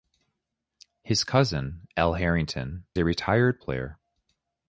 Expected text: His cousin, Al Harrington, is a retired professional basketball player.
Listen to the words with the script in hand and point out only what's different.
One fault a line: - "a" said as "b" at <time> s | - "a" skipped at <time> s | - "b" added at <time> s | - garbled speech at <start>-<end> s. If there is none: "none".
- "is" skipped at 2.9 s
- "professional basketball" skipped at 3.6 s